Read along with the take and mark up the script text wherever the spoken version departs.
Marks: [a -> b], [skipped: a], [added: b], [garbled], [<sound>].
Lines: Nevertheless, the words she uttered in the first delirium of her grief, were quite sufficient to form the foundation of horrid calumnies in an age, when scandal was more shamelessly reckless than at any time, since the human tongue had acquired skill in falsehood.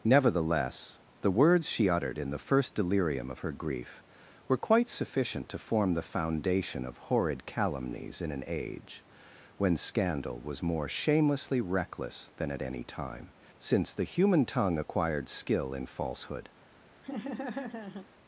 Nevertheless, the words she uttered in the first delirium of her grief, were quite sufficient to form the foundation of horrid calumnies in an age, when scandal was more shamelessly reckless than at any time, since the human tongue [skipped: had] acquired skill in falsehood. [laugh]